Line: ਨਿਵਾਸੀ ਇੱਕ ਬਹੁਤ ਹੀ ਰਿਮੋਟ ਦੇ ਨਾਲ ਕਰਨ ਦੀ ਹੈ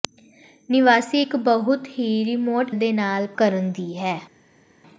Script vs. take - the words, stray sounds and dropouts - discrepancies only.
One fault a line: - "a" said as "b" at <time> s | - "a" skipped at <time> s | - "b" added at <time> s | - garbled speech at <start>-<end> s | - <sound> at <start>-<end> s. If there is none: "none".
none